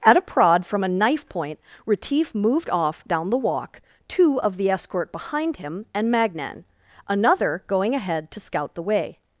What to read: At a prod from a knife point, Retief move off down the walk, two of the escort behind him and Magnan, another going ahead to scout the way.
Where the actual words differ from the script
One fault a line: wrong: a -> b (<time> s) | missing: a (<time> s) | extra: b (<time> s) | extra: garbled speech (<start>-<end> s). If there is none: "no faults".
wrong: move -> moved (2.3 s)